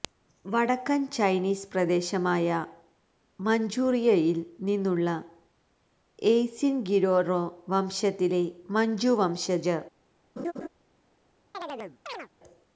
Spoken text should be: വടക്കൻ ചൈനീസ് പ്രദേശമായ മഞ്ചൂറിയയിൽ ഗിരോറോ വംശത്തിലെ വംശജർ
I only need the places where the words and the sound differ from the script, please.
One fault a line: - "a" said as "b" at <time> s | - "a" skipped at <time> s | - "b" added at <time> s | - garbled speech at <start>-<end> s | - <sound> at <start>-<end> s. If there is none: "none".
- "നിന്നുള്ള എയ്സിൻ" added at 4.6 s
- "മഞ്ചു" added at 8.7 s
- laugh at 10.4-10.7 s
- chirp at 11.5-12.3 s